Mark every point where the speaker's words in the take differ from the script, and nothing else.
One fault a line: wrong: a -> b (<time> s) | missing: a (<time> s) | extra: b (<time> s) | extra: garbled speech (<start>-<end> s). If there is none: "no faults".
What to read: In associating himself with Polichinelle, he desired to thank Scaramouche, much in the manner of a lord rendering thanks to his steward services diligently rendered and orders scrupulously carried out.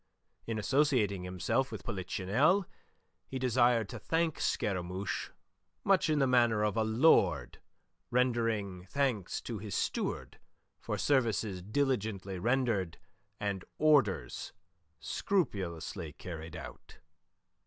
extra: for (10.8 s)